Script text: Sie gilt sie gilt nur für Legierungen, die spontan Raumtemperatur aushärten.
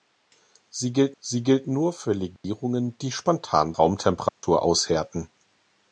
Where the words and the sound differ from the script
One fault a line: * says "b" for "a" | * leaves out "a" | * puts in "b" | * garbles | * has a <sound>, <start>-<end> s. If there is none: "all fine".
* has a dropout, 2.4-2.4 s
* has a dropout, 4.3-4.4 s